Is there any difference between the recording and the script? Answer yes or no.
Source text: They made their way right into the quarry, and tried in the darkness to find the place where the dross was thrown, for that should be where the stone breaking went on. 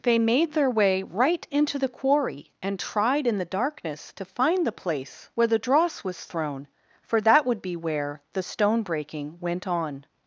yes